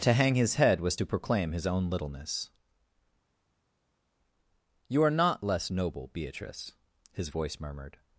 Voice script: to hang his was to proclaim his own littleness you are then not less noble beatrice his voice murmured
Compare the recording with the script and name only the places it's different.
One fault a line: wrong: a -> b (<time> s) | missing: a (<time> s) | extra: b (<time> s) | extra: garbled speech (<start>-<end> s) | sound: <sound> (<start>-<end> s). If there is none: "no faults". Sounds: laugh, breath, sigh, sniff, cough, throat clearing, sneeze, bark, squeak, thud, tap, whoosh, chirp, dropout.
extra: head (0.6 s)
missing: then (5.2 s)